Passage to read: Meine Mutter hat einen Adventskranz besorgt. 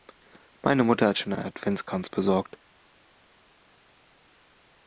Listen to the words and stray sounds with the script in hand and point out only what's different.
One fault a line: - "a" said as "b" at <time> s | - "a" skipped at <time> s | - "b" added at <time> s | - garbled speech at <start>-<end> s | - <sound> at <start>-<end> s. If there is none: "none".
- "schon" added at 1.2 s